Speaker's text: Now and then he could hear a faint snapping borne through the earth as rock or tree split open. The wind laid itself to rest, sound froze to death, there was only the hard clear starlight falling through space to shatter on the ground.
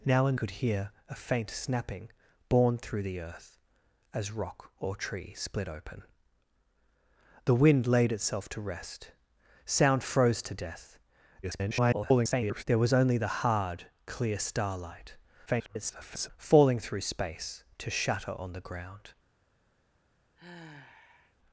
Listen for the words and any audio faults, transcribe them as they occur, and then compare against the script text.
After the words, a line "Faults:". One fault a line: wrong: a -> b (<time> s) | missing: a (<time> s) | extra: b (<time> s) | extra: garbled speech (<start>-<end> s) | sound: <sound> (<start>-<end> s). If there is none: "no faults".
Now and could hear a faint snapping borne through the earth as rock or tree split open. The wind laid itself to rest, sound froze to death, [garbled] there was only the hard clear starlight [garbled] falling through space to shatter on the ground.
Faults:
missing: then he (0.4 s)
extra: garbled speech (11.4-12.6 s)
extra: garbled speech (15.5-16.3 s)
sound: sigh (20.4-21.4 s)